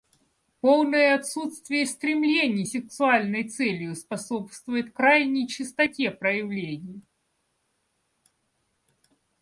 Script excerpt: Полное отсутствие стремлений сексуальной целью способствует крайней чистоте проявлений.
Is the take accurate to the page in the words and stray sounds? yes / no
yes